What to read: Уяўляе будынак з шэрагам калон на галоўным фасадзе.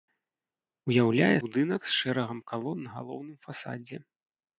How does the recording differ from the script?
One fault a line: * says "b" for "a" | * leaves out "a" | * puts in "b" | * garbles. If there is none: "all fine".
all fine